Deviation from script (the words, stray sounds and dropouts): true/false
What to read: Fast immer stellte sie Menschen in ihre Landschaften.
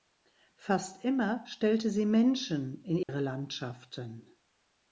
true